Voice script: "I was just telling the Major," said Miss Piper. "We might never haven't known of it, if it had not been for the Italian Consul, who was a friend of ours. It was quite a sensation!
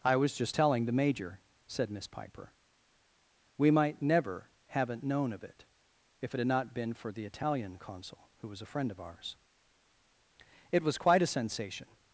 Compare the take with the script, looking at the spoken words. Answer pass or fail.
pass